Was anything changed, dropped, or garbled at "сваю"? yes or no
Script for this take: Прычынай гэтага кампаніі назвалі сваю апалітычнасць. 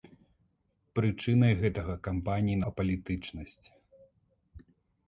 yes